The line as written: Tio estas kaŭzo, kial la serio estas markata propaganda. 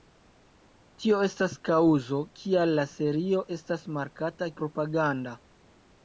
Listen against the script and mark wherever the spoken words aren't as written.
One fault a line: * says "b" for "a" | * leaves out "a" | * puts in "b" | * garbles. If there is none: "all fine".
all fine